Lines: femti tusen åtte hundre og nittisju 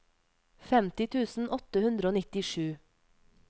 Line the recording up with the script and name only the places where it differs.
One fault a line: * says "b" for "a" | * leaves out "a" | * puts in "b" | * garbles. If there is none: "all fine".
all fine